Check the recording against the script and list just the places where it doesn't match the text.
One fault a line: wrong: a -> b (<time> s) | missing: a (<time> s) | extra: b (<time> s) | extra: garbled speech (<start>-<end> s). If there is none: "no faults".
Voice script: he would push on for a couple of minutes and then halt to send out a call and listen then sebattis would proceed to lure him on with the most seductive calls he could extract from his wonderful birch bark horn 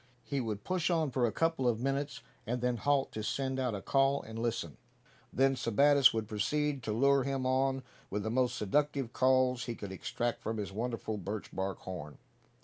no faults